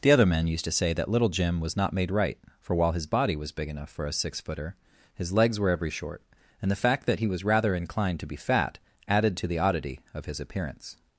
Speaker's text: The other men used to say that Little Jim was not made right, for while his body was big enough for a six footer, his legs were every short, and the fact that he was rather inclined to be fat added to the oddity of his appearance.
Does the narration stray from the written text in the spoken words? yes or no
no